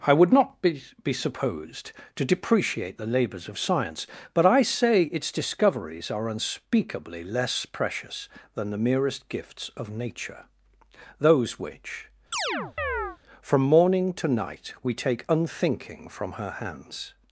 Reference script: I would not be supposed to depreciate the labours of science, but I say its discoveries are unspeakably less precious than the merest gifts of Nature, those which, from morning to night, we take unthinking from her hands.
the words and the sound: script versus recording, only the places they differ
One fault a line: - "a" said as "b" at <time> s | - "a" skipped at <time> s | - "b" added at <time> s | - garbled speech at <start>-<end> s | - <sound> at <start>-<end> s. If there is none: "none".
- "be" added at 1.0 s
- chirp at 12.3-13.2 s